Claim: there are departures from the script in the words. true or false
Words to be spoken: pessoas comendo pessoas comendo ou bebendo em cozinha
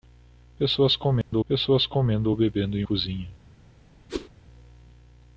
false